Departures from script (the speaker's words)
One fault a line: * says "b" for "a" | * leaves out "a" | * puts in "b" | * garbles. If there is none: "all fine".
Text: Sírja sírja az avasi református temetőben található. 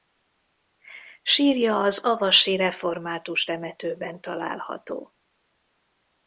* leaves out "sírja"